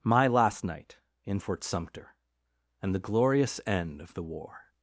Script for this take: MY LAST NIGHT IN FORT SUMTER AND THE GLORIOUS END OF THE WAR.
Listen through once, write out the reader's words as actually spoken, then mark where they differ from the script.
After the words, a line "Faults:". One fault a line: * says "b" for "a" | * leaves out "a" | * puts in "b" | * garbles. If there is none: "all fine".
MY LAST NIGHT IN FORT SUMTER AND THE GLORIOUS END OF THE WAR.
Faults:
all fine